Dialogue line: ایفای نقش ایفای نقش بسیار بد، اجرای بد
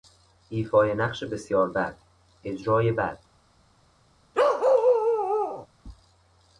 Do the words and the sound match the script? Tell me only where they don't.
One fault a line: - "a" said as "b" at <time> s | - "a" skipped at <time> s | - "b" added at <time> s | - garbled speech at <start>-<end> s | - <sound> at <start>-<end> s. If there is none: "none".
- "ایفای نقش" skipped at 1.2 s
- bark at 4.3-5.7 s